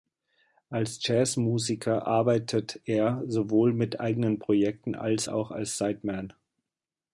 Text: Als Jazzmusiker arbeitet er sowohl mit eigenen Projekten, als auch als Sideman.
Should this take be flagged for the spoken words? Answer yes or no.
no